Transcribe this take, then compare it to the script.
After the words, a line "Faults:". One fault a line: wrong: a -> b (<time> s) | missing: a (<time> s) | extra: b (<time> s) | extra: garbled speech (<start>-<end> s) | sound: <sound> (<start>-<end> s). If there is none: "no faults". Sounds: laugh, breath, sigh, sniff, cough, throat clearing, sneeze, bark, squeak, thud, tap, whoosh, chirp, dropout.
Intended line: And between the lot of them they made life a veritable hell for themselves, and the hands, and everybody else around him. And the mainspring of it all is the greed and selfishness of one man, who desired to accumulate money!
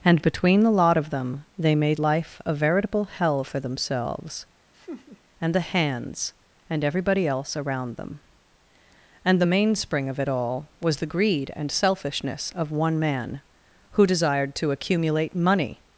And between the lot of them they made life a veritable hell for themselves, and the hands, and everybody else around them. And the mainspring of it all was the greed and selfishness of one man, who desired to accumulate money!
Faults:
sound: laugh (4.7-5.2 s)
wrong: him -> them (8.0 s)
wrong: is -> was (10.8 s)